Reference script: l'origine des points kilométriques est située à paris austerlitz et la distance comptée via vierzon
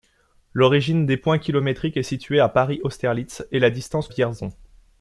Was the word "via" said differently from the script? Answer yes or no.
yes